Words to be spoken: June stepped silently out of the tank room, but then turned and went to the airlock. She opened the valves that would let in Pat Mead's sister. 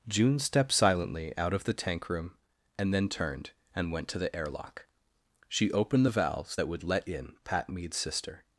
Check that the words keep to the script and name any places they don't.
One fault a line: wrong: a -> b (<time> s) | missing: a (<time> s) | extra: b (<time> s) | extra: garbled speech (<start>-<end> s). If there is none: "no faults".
wrong: but -> and (2.8 s)